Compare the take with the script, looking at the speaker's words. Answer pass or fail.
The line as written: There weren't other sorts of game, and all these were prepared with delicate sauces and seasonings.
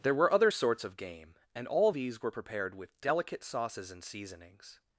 fail